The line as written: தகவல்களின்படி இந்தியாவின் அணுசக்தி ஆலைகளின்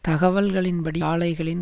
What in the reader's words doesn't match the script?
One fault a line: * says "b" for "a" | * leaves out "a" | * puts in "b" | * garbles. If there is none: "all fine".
* leaves out "இந்தியாவின் அணுசக்தி"